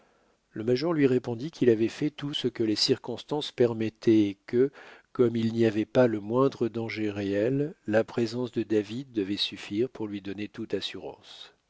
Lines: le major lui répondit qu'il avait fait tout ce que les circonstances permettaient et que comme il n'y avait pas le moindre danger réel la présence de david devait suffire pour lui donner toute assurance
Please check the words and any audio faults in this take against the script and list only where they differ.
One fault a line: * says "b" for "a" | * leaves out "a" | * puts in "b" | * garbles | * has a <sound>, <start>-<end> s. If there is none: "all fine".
all fine